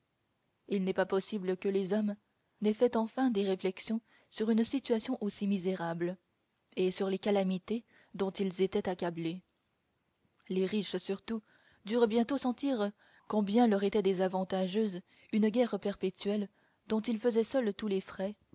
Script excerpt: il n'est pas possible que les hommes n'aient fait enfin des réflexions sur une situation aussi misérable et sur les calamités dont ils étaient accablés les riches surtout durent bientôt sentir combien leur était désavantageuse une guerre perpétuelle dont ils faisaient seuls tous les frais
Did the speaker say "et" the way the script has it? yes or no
yes